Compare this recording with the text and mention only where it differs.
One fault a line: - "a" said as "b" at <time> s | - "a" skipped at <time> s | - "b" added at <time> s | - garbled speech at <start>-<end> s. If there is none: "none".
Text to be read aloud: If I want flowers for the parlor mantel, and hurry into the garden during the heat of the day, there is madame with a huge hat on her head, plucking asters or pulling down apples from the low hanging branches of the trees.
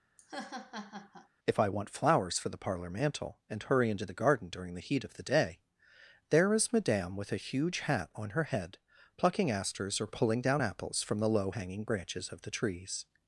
none